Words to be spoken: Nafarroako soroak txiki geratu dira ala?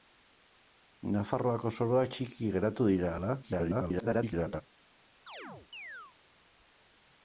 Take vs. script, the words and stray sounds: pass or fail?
fail